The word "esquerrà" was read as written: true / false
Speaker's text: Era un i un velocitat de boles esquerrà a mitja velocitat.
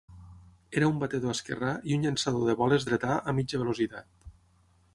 false